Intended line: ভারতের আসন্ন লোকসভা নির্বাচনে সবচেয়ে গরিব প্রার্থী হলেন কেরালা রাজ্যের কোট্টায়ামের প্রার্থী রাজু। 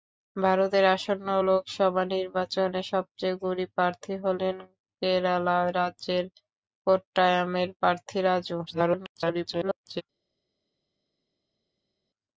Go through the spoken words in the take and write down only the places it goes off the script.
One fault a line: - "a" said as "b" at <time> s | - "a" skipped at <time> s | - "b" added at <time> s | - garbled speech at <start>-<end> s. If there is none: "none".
- garbled speech at 8.7-10.0 s